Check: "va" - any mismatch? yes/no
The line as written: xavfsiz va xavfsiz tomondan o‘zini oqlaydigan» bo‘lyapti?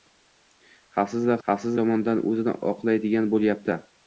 no